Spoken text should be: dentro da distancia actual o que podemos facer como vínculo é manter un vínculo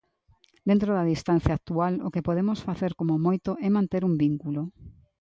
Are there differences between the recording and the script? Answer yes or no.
yes